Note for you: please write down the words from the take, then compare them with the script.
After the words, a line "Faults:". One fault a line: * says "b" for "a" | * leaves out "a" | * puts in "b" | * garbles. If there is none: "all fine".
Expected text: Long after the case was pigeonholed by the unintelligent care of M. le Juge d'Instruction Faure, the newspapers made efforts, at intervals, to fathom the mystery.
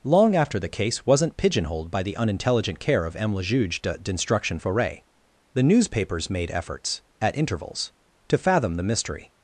Long after the case wasn't pigeonholed by the unintelligent care of M. le Juge d'Instruction Faure, the newspapers made efforts, at intervals, to fathom the mystery.
Faults:
* says "wasn't" for "was"